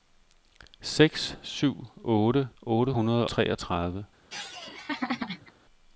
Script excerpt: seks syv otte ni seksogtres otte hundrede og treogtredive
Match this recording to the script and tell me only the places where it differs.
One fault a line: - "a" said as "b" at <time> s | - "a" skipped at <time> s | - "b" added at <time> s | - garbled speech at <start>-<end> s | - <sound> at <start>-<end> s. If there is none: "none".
- "ni seksogtres" skipped at 2.5 s
- "og" skipped at 3.3 s
- laugh at 4.3-5.5 s